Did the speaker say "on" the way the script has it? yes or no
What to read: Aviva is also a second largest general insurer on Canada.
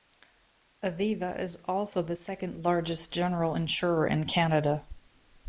no